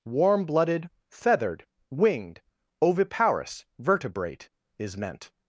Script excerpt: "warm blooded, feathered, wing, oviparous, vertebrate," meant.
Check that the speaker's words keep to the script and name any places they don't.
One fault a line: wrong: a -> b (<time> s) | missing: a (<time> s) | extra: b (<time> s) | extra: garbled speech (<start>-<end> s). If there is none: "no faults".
wrong: wing -> winged (1.9 s)
extra: is (4.8 s)